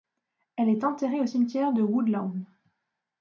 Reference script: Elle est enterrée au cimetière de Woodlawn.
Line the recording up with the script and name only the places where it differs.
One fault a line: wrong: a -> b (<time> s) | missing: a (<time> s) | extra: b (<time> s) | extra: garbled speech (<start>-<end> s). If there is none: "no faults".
no faults